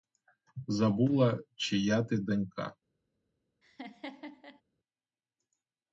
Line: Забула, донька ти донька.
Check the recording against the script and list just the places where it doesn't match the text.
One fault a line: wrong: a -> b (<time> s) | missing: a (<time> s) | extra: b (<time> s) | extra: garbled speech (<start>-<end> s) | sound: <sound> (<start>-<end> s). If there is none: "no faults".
wrong: донька -> чия (1.6 s)
sound: laugh (3.6-4.6 s)